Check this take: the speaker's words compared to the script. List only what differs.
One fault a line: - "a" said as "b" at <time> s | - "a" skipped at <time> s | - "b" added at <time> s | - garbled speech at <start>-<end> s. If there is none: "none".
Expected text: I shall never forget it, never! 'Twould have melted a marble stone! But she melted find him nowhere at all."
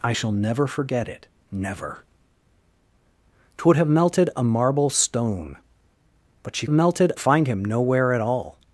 none